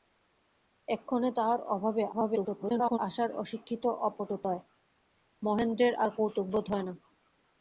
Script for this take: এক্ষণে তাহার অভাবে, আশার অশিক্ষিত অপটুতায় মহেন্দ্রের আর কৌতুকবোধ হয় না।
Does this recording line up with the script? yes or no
no